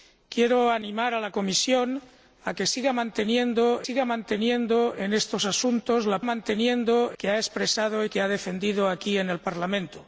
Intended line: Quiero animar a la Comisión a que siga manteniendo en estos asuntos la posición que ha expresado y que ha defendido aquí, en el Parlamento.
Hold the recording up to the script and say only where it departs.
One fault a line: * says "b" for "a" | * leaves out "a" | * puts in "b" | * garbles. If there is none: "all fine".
* puts in "siga manteniendo"
* says "manteniendo" for "posición"